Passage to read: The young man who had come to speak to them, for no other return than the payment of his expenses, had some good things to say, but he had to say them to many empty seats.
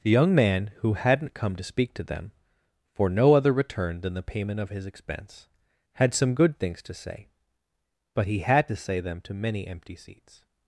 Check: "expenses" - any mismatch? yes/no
yes